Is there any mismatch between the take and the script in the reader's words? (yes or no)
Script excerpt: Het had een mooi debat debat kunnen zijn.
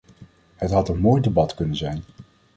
yes